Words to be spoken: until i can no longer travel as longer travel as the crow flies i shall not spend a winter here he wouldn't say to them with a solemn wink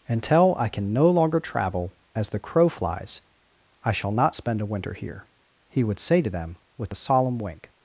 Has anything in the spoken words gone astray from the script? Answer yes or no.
yes